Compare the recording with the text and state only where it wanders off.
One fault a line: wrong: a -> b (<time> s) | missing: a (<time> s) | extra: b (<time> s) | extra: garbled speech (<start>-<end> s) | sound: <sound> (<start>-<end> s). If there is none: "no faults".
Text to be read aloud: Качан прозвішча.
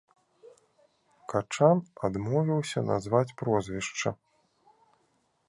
extra: адмовіўся назваць (2.1 s)